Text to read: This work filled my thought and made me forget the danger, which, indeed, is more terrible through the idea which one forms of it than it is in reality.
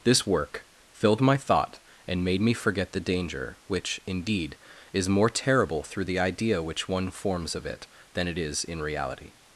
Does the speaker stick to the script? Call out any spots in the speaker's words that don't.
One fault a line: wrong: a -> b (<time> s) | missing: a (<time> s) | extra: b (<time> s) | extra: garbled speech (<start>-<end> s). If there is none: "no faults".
no faults